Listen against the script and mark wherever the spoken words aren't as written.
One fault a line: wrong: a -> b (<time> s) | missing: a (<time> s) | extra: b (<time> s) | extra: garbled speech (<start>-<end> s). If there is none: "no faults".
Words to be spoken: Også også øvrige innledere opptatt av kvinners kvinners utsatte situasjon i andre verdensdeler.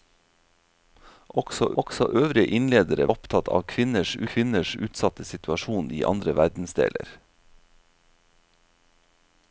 no faults